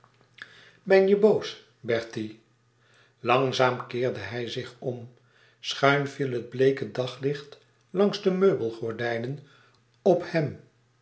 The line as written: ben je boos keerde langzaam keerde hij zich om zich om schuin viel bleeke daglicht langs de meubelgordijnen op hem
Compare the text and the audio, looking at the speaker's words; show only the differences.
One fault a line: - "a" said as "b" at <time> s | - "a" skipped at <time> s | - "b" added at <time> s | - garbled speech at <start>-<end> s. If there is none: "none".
- "keerde" said as "bertie" at 1.8 s
- "zich om" skipped at 5.1 s
- "het" added at 6.3 s